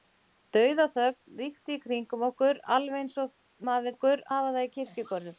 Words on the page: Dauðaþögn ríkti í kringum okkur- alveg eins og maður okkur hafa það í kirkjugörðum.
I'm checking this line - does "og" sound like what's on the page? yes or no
yes